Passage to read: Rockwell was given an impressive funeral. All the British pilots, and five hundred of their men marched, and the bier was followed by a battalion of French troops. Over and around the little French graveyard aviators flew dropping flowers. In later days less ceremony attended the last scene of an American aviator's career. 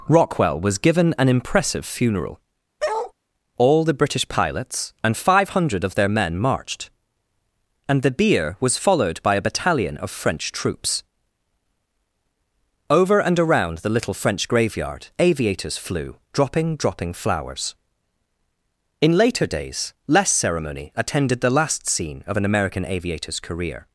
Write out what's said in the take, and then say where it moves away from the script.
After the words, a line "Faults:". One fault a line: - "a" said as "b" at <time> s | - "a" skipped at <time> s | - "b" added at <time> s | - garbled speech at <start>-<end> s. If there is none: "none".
Rockwell was given an impressive funeral. All the British pilots, and five hundred of their men marched, and the bier was followed by a battalion of French troops. Over and around the little French graveyard aviators flew dropping dropping flowers. In later days less ceremony attended the last scene of an American aviator's career.
Faults:
- "dropping" added at 16.8 s